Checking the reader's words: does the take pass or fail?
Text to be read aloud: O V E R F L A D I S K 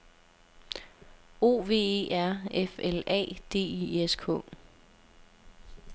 pass